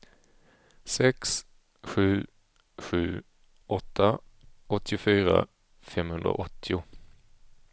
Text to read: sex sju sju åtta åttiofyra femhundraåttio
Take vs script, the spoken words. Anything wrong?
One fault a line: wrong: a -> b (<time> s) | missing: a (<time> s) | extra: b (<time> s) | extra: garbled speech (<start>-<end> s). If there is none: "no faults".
no faults